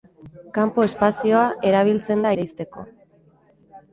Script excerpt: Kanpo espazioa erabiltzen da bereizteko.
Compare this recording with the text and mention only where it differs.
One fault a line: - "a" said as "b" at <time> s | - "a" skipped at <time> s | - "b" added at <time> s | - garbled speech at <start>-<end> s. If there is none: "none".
none